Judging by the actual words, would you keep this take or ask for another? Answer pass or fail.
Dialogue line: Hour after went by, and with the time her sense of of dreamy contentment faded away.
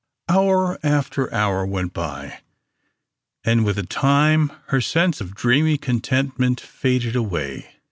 fail